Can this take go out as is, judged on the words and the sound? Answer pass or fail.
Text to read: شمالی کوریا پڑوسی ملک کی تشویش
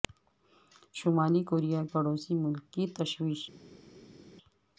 pass